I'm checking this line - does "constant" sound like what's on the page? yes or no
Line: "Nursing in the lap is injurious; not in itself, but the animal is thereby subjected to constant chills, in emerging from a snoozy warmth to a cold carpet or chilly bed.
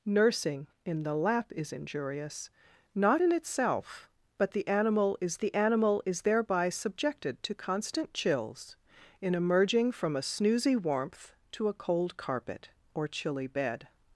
yes